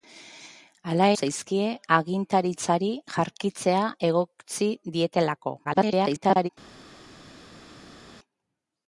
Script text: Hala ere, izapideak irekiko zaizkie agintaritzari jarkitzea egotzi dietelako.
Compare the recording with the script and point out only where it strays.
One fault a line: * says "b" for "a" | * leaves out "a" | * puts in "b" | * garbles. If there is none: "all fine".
* leaves out "ere izapideak irekiko"
* garbles